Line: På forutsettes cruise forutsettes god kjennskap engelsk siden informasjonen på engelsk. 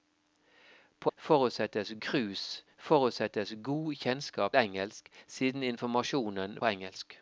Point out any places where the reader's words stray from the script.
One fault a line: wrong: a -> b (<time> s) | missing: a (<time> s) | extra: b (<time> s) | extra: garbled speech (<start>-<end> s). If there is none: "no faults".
no faults